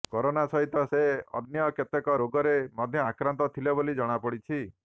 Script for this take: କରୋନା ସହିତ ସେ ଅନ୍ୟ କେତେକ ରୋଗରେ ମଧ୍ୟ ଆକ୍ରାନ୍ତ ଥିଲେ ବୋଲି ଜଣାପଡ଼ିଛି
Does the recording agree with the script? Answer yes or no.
yes